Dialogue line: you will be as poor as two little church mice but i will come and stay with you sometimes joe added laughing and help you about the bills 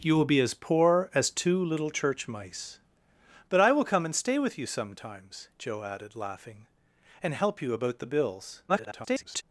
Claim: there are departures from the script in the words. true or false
true